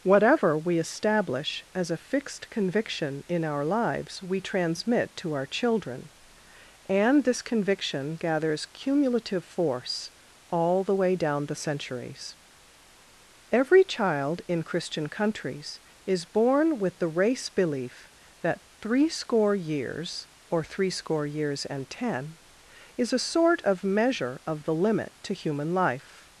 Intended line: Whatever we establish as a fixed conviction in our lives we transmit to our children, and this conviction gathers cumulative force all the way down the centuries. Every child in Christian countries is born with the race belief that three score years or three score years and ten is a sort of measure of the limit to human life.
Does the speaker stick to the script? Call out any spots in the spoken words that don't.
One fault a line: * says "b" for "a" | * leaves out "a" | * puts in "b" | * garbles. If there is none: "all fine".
all fine